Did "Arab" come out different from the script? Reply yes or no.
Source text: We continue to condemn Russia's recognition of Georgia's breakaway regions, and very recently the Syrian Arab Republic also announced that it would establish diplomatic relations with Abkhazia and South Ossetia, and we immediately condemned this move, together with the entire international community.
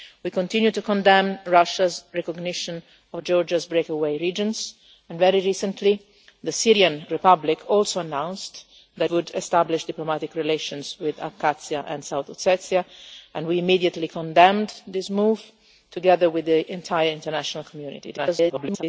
yes